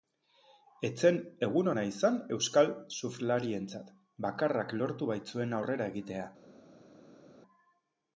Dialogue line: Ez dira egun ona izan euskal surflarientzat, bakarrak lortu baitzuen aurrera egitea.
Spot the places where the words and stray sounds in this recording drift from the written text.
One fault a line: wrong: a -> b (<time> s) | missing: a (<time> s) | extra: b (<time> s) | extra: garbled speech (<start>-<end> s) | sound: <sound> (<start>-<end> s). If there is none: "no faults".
wrong: dira -> zen (1.0 s)